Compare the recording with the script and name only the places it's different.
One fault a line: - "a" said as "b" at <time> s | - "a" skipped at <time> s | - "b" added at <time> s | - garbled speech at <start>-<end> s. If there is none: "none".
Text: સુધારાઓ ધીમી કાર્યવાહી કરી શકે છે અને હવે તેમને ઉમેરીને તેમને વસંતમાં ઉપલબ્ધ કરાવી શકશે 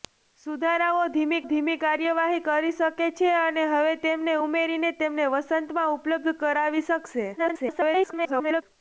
- "ધીમી" added at 1.5 s
- garbled speech at 7.4-8.6 s